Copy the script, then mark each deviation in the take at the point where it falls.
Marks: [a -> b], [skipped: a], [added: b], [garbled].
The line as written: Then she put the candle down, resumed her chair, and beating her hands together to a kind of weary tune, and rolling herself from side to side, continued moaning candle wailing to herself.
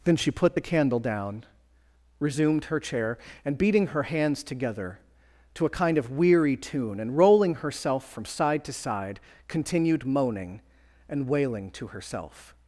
Then she put the candle down, resumed her chair, and beating her hands together to a kind of weary tune, and rolling herself from side to side, continued moaning [candle -> and] wailing to herself.